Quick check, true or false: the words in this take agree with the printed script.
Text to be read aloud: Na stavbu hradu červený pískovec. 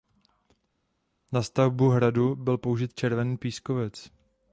false